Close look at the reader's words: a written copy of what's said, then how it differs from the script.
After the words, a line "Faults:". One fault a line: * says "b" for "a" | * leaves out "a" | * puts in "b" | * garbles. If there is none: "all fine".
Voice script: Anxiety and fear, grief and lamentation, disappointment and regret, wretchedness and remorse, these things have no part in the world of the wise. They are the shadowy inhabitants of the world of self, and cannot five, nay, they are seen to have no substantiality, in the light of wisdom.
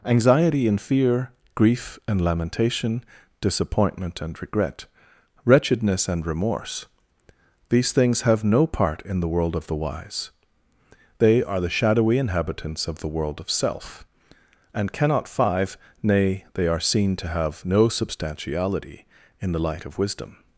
Anxiety and fear, grief and lamentation, disappointment and regret, wretchedness and remorse, these things have no part in the world of the wise. They are the shadowy inhabitants of the world of self, and cannot five, nay, they are seen to have no substantiality, in the light of wisdom.
Faults:
all fine